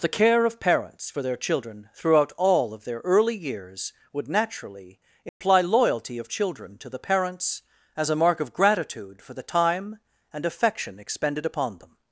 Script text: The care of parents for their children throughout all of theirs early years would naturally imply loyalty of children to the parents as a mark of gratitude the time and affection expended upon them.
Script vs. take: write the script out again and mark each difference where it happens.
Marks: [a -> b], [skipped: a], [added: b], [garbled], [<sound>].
The care of parents for their children throughout all of [theirs -> their] early years would naturally imply [dropout] loyalty of children to the parents as a mark of gratitude [added: for] the time and affection expended upon them.